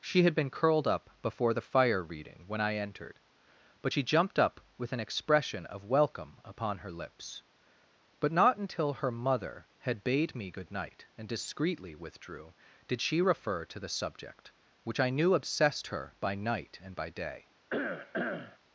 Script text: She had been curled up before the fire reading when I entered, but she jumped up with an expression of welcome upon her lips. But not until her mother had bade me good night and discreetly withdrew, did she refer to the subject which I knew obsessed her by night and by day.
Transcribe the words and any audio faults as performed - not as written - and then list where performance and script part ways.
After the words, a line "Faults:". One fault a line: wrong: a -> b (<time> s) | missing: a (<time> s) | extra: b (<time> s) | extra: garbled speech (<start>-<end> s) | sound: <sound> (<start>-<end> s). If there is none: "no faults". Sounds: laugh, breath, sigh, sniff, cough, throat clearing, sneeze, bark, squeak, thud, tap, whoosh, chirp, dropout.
She had been curled up before the fire reading when I entered, but she jumped up with an expression of welcome upon her lips. But not until her mother had bade me good night and discreetly withdrew, did she refer to the subject which I knew obsessed her by night and by day.
Faults:
sound: cough (17.7-18.6 s)